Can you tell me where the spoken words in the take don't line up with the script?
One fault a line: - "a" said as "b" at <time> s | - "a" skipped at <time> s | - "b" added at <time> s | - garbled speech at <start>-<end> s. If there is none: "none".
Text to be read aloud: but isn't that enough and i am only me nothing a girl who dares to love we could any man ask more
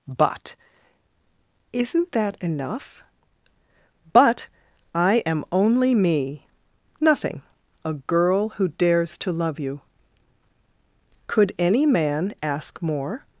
- "and" said as "but" at 4.1 s
- "we" said as "you" at 9.6 s